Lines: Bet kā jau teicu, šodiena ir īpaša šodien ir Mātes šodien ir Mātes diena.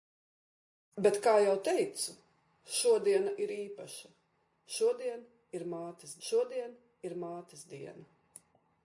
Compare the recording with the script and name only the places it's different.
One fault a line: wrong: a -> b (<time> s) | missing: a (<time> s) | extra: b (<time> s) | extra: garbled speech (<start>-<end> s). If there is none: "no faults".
no faults